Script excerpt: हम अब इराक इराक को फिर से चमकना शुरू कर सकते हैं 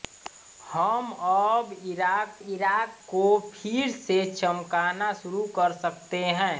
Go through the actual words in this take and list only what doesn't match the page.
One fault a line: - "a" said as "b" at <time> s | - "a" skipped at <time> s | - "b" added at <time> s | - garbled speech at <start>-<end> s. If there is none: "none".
none